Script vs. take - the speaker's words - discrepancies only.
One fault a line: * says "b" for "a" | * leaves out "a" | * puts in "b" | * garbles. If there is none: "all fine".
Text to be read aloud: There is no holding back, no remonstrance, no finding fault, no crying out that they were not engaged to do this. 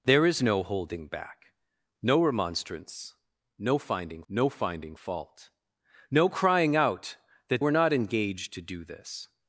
* puts in "no finding"
* leaves out "they"